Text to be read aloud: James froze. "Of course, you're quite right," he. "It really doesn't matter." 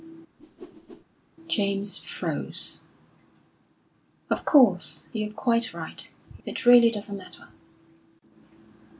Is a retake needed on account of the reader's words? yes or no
no